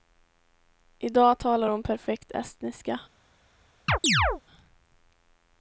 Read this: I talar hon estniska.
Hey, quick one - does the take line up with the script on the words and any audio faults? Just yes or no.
no